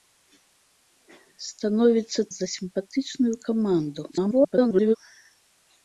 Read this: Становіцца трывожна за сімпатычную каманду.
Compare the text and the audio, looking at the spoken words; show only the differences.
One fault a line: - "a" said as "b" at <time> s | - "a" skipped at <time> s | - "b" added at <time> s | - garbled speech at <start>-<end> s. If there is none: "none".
- "трывожна" skipped at 2.2 s
- garbled speech at 4.1-5.0 s